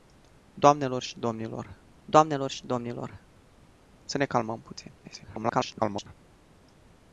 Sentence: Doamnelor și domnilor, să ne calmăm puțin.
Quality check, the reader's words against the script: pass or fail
fail